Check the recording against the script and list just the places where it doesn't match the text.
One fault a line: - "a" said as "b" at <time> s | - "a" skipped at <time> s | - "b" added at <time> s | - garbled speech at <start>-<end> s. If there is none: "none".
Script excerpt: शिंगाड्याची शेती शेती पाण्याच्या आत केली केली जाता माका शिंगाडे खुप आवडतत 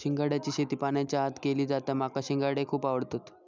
- "शेती" skipped at 0.8 s
- "केली" skipped at 1.6 s